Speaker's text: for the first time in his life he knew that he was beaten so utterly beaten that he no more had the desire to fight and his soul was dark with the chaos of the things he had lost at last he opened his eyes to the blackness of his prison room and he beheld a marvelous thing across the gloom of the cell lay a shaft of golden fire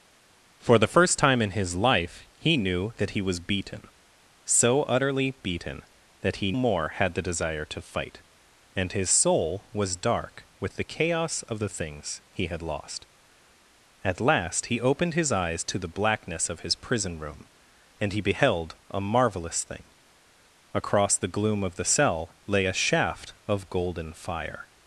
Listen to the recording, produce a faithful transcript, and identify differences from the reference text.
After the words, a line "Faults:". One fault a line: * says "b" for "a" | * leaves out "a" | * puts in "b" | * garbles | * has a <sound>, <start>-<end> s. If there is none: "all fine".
for the first time in his life he knew that he was beaten so utterly beaten that he more had the desire to fight and his soul was dark with the chaos of the things he had lost at last he opened his eyes to the blackness of his prison room and he beheld a marvelous thing across the gloom of the cell lay a shaft of golden fire
Faults:
* leaves out "no"